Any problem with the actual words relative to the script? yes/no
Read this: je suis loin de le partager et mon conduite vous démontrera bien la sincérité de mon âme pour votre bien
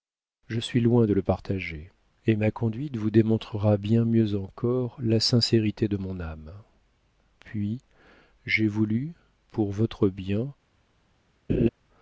yes